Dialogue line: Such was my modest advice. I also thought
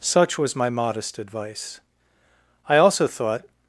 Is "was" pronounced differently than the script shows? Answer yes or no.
no